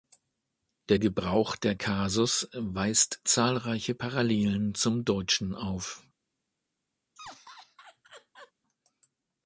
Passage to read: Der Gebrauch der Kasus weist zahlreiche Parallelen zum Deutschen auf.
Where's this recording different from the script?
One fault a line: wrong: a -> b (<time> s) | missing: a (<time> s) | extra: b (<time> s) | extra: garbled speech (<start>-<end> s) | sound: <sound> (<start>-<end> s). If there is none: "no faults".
sound: laugh (7.2-8.5 s)